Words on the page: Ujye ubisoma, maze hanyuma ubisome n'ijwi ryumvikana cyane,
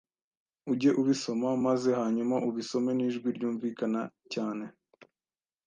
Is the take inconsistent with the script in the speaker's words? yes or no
no